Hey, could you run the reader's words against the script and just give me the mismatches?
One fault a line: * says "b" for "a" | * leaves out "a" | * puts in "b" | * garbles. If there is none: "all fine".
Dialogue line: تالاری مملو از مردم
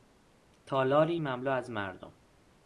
all fine